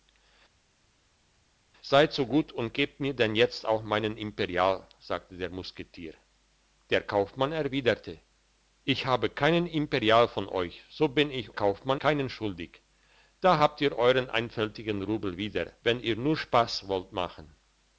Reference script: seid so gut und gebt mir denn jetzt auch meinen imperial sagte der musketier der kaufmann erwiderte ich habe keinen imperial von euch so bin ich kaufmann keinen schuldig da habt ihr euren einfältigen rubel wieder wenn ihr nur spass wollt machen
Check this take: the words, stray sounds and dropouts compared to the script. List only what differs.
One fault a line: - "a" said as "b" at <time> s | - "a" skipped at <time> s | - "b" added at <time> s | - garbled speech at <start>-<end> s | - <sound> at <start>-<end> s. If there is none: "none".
none